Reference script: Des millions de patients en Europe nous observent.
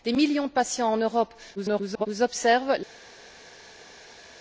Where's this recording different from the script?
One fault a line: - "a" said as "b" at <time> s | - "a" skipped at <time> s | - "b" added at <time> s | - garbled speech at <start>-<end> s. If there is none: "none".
- garbled speech at 1.5-2.1 s